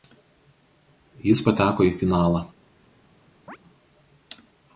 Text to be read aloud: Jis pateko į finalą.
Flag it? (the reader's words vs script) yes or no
no